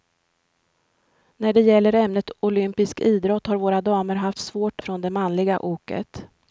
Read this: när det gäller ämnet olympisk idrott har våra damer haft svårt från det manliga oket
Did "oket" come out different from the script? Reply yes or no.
no